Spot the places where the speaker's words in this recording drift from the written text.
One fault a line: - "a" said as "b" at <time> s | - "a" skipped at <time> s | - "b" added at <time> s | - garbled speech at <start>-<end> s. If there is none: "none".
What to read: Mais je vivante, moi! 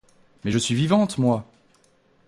- "suis" added at 0.6 s